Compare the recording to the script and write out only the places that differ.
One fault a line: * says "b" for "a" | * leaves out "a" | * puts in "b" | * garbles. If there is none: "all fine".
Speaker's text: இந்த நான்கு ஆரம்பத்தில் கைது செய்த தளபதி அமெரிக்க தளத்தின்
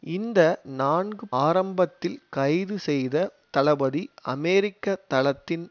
all fine